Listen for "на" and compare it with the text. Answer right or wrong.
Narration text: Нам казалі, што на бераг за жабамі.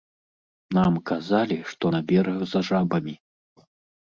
right